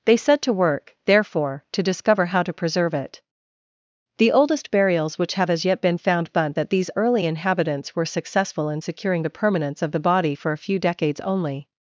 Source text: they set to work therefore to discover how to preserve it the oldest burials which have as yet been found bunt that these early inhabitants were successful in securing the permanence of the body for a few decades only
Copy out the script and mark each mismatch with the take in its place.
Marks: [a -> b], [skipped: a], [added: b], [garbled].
they set to work therefore to discover how to preserve it the oldest burials which have as yet been found bunt that these early inhabitants were successful in securing the permanence of the body for a few decades only